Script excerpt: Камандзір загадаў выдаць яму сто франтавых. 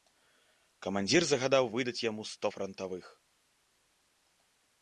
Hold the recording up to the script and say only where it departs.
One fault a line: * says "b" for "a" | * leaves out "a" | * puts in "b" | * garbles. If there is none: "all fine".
all fine